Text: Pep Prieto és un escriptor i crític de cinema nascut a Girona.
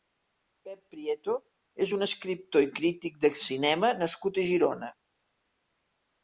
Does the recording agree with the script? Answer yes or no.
yes